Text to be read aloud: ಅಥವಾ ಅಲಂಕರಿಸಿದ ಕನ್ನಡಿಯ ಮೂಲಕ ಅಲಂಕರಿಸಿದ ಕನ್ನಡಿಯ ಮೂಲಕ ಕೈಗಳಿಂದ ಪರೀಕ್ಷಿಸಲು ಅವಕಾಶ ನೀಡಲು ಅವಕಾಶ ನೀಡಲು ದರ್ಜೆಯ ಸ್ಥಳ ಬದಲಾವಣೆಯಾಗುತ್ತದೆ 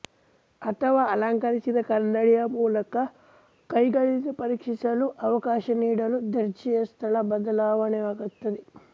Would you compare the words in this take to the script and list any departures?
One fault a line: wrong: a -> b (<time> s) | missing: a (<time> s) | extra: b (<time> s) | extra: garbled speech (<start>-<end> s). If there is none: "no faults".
missing: ಅಲಂಕರಿಸಿದ ಕನ್ನಡಿಯ ಮೂಲಕ (3.0 s)
missing: ಅವಕಾಶ ನೀಡಲು (6.2 s)